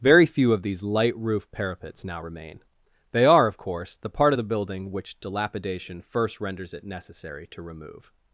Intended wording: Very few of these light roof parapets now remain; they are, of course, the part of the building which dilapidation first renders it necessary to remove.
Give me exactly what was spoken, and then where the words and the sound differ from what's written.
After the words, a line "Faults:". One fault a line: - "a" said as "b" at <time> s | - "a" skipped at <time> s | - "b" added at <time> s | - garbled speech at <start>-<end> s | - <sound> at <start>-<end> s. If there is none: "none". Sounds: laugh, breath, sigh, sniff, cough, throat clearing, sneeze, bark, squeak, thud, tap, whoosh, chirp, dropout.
Very few of these light roof parapets now remain; they are, of course, the part of the building which dilapidation first renders it necessary to remove.
Faults:
none